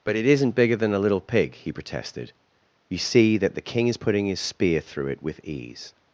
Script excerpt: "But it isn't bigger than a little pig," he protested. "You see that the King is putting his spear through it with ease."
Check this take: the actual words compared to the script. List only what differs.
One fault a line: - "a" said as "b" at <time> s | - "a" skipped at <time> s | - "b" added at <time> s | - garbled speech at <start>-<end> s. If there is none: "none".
none